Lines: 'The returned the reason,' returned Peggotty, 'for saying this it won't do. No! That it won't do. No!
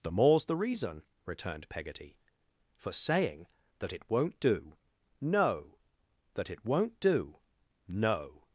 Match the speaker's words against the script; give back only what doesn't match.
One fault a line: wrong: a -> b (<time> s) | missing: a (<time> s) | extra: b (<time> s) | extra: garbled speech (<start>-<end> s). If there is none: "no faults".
wrong: returned -> more's (0.1 s)
wrong: this -> that (3.8 s)